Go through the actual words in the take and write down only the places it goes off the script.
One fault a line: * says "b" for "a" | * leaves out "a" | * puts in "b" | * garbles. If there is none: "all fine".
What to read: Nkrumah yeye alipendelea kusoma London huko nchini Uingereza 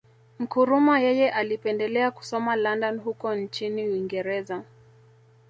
all fine